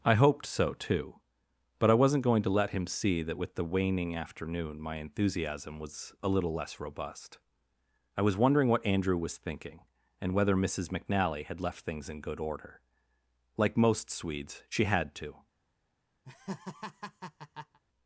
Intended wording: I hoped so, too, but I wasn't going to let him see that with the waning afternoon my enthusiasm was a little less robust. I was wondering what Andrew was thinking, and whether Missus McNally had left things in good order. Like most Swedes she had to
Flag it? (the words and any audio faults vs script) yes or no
yes